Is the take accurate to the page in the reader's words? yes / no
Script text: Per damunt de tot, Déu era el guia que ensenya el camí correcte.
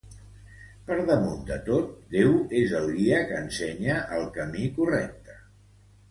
no